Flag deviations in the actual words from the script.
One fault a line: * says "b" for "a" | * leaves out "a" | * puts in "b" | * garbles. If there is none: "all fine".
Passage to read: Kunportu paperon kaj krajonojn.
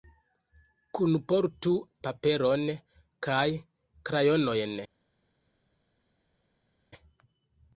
all fine